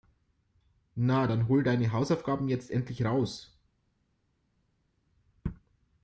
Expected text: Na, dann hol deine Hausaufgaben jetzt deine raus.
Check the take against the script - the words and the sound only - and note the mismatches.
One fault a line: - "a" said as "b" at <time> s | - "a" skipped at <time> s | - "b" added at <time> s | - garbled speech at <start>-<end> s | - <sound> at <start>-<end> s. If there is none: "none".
- "deine" said as "endlich" at 2.7 s